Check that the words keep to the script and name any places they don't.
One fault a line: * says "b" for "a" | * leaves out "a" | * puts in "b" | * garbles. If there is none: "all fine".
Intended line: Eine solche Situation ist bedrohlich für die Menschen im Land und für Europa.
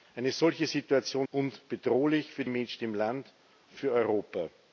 * says "und" for "ist"
* leaves out "die"
* leaves out "und"